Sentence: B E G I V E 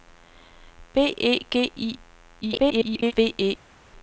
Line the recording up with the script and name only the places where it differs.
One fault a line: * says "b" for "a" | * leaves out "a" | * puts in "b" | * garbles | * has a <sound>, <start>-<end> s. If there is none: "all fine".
* garbles